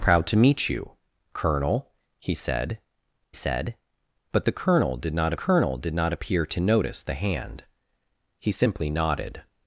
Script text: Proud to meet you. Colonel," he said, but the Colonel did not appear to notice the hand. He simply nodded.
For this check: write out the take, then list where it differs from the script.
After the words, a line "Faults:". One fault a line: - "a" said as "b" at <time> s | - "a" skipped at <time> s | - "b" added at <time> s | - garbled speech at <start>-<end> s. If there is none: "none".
Proud to meet you. Colonel," he said said, but the Colonel did not Colonel did not appear to notice the hand. He simply nodded.
Faults:
- "said" added at 3.3 s
- "Colonel did not" added at 5.3 s